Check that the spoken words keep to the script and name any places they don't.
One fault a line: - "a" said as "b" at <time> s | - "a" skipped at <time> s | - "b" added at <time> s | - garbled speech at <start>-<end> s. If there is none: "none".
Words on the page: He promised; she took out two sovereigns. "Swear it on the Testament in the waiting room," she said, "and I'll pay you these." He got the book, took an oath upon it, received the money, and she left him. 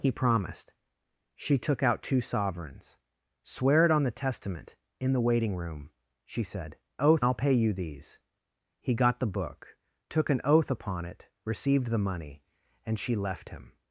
- "and" said as "oath" at 7.0 s